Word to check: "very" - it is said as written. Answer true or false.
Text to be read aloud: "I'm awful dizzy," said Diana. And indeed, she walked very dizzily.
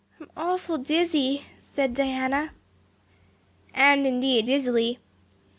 false